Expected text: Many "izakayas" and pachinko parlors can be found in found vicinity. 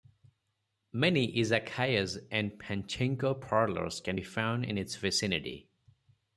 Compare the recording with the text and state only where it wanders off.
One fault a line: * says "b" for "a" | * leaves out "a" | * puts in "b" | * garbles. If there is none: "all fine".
* says "its" for "found"